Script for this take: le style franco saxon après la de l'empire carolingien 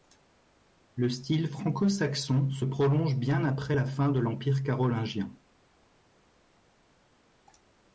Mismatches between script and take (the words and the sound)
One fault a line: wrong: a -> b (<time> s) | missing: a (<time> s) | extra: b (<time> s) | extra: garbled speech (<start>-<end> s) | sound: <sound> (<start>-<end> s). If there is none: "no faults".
extra: se prolonge bien (2.5 s)
extra: fin (3.9 s)